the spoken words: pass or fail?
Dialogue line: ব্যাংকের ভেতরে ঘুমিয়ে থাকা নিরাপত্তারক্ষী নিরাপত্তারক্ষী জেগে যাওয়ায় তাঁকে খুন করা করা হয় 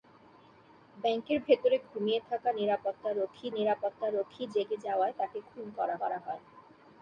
pass